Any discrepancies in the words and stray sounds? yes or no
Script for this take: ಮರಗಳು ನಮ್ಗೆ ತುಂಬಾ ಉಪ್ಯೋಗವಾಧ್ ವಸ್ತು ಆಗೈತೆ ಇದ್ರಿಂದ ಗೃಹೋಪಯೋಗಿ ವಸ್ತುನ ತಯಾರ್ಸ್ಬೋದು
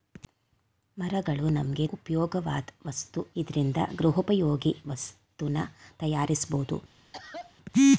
yes